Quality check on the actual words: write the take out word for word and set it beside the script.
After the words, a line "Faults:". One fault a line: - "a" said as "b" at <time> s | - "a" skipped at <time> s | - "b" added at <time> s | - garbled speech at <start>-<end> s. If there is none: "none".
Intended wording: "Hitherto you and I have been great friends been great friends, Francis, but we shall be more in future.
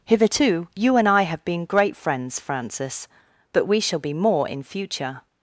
"Hitherto you and I have been great friends, Francis, but we shall be more in future.
Faults:
- "been great friends" skipped at 2.4 s